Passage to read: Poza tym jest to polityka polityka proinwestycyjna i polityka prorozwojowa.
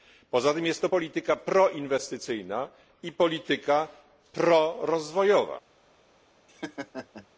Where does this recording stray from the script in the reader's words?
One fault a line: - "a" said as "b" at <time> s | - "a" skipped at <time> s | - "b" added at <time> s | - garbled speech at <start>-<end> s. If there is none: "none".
- "polityka" skipped at 1.4 s